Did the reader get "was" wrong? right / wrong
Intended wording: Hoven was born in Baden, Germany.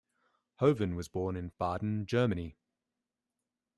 right